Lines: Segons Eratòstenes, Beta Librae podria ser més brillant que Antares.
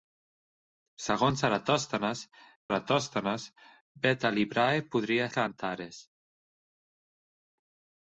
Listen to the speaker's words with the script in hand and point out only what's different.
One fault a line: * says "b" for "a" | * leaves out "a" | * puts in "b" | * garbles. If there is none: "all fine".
* puts in "Eratòstenes"
* leaves out "ser més brillant"